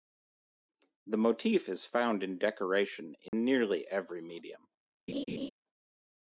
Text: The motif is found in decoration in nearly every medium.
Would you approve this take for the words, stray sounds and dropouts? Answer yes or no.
no